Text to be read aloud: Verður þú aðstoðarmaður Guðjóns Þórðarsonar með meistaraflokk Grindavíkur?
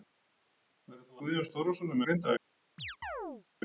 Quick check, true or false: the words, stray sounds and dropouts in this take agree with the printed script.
false